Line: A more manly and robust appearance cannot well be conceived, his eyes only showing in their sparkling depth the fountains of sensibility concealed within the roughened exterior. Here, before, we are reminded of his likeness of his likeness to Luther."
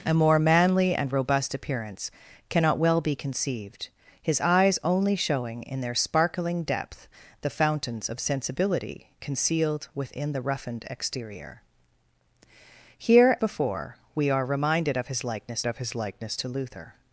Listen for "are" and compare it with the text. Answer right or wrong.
right